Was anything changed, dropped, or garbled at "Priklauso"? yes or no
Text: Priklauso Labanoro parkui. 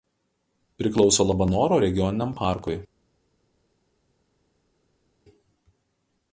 no